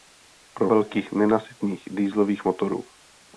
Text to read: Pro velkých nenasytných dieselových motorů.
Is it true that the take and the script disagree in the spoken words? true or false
false